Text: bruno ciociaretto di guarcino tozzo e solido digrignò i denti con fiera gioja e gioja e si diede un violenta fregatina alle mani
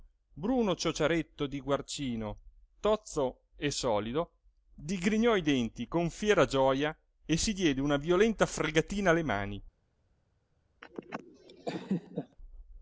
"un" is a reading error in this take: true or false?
true